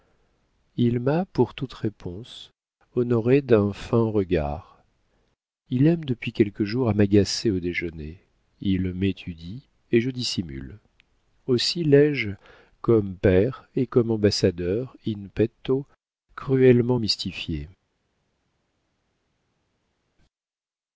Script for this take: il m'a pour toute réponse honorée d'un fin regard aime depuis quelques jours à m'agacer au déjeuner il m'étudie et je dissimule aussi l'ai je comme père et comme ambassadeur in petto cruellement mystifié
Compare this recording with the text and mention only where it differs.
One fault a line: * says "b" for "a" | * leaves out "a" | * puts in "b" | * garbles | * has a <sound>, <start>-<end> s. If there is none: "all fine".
* puts in "il"